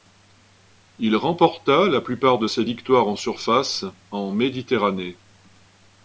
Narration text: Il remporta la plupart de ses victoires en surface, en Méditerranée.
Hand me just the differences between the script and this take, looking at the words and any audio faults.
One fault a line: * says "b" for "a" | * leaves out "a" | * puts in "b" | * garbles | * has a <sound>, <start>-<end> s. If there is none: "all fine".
all fine